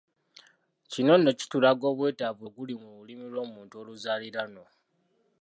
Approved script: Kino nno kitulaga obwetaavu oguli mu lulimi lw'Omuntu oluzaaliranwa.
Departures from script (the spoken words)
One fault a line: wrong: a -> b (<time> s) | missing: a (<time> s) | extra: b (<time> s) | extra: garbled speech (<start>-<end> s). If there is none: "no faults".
no faults